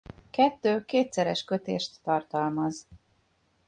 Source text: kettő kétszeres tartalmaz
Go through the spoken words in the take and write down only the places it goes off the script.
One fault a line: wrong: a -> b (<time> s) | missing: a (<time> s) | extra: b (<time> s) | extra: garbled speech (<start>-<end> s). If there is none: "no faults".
extra: kötést (1.4 s)